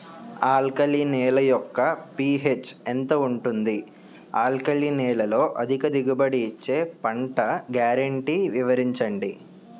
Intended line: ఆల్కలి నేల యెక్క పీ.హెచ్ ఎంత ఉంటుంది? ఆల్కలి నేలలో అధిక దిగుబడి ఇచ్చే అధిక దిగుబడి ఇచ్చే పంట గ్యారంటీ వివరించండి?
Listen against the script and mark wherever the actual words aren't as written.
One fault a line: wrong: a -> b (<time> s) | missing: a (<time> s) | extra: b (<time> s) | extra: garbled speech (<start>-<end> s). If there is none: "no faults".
missing: అధిక దిగుబడి ఇచ్చే (6.8 s)